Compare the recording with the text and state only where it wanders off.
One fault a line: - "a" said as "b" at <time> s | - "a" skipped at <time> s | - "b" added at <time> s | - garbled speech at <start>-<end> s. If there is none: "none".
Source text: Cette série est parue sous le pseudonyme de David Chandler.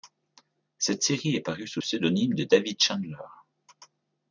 - "le" skipped at 1.8 s